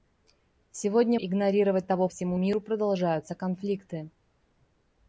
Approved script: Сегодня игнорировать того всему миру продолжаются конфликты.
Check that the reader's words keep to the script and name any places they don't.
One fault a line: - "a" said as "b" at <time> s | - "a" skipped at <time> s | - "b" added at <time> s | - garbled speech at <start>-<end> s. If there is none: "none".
none